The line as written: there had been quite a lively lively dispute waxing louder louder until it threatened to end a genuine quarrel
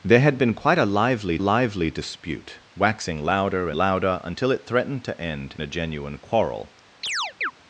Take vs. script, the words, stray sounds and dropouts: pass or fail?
fail